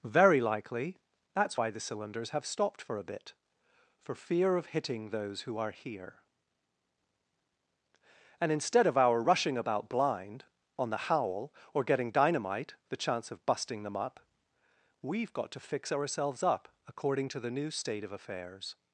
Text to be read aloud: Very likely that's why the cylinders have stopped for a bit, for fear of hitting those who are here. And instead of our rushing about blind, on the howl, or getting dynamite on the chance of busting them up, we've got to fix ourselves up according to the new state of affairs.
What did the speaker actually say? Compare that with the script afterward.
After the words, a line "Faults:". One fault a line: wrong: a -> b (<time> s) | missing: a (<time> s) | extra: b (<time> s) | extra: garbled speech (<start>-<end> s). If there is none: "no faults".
Very likely that's why the cylinders have stopped for a bit, for fear of hitting those who are here. And instead of our rushing about blind, on the howl, or getting dynamite the chance of busting them up, we've got to fix ourselves up according to the new state of affairs.
Faults:
missing: on (12.7 s)